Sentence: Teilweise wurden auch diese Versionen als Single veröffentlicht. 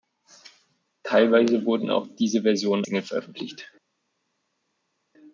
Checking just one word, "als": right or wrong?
wrong